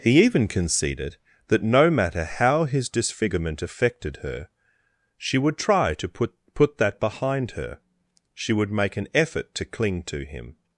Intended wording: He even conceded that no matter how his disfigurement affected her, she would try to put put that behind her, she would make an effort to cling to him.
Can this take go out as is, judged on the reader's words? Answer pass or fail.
pass